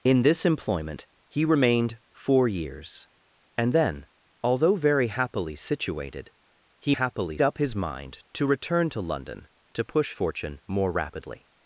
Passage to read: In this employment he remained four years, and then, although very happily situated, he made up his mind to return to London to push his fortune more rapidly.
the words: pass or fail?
fail